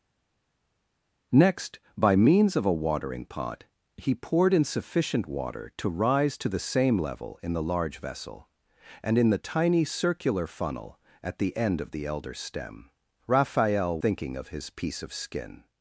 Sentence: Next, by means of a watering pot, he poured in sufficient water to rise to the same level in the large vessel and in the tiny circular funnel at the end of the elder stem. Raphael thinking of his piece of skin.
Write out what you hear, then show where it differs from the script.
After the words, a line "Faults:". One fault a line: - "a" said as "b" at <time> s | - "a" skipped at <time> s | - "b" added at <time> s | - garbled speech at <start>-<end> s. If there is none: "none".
Next, by means of a watering pot, he poured in sufficient water to rise to the same level in the large vessel and in the tiny circular funnel at the end of the elder stem. Raphael thinking of his piece of skin.
Faults:
none